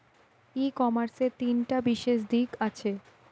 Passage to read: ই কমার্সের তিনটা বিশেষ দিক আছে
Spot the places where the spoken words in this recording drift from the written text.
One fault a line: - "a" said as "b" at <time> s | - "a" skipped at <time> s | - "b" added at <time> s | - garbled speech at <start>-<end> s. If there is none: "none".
none